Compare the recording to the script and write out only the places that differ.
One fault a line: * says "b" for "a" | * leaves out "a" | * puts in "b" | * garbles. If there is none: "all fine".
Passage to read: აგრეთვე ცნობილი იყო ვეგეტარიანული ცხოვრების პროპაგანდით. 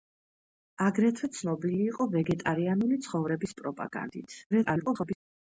* garbles